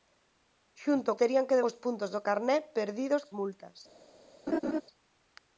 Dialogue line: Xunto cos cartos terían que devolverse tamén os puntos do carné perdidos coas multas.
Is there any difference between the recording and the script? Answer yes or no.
yes